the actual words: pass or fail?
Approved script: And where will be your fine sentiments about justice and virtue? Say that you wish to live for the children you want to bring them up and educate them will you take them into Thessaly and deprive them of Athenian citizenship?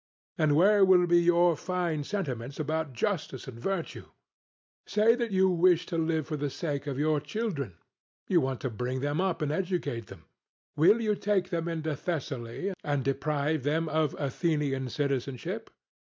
fail